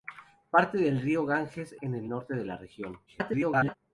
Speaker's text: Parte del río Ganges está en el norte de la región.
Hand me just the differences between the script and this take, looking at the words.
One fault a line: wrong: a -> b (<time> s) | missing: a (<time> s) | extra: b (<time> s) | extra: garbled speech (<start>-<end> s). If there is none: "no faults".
missing: está (1.7 s)
extra: garbled speech (3.1-3.8 s)